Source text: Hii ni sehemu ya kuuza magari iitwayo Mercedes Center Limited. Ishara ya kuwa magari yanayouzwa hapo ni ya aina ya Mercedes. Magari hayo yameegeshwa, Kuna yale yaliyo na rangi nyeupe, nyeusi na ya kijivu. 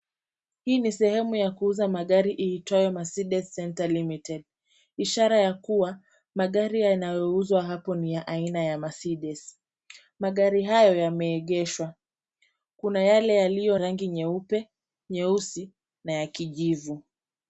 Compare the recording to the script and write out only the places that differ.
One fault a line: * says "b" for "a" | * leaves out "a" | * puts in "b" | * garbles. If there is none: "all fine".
* leaves out "na"